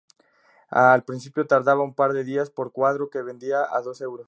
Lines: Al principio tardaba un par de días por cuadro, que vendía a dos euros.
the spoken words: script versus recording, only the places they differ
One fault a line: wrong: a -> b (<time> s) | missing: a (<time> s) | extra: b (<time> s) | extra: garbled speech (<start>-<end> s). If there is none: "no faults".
no faults